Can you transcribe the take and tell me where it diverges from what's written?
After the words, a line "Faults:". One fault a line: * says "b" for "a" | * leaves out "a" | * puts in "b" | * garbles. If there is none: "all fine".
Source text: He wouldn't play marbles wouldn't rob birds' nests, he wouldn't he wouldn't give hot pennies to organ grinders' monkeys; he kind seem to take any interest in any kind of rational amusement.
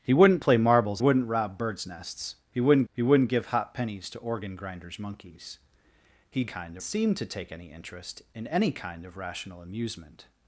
He wouldn't play marbles wouldn't rob birds' nests, he wouldn't he wouldn't give hot pennies to organ grinders' monkeys; he kind seem to take any interest in any kind of rational amusement.
Faults:
all fine